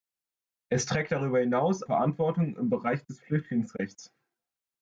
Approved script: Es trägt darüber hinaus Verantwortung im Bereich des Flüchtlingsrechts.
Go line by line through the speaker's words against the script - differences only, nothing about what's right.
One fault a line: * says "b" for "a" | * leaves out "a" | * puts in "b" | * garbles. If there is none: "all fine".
all fine